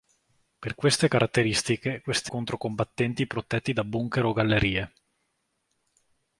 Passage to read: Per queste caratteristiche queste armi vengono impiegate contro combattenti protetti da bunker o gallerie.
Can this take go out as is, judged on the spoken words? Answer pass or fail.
fail